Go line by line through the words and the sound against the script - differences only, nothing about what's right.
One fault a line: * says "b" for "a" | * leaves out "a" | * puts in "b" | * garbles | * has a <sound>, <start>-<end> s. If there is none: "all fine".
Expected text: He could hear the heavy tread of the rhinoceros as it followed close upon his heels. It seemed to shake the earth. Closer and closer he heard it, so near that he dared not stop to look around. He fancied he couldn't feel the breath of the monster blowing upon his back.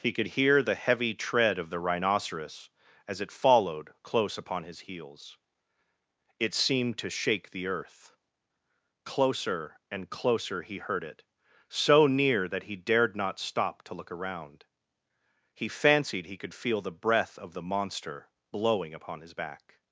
* says "could" for "couldn't"